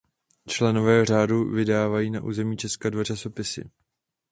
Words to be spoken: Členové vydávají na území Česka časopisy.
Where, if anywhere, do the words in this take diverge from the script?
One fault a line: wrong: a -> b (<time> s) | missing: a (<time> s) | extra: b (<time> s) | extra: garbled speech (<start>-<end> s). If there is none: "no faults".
extra: řádu (1.1 s)
extra: dva (2.9 s)